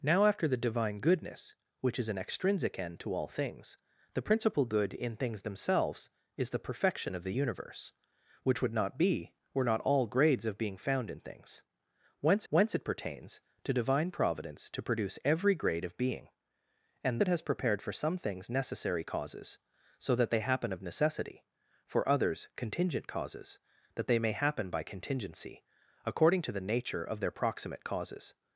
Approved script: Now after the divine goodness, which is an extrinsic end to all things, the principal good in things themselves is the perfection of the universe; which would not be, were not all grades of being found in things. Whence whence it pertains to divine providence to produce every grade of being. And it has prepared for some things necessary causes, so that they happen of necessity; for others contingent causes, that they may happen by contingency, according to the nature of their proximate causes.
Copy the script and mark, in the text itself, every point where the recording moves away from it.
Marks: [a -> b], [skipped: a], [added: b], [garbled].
Now after the divine goodness, which is an extrinsic end to all things, the principal good in things themselves is the perfection of the universe; which would not be, were not all grades of being found in things. Whence whence it pertains to divine providence to produce every grade of being. And it has prepared for some things necessary causes, so that they happen of necessity; for others contingent causes, that they may happen by contingency, according to the nature of their proximate causes.